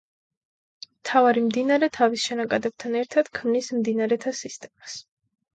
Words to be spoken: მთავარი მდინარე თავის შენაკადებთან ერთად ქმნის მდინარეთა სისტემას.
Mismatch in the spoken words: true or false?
false